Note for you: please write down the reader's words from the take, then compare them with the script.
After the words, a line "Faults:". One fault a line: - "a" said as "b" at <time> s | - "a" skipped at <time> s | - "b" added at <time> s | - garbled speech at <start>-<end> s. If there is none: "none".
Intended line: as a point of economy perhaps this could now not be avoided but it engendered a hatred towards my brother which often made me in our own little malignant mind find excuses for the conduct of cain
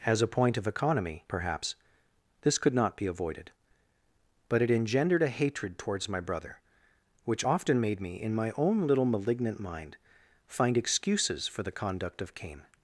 as a point of economy perhaps this could not be avoided but it engendered a hatred towards my brother which often made me in my own little malignant mind find excuses for the conduct of cain
Faults:
- "now" skipped at 2.7 s
- "our" said as "my" at 8.3 s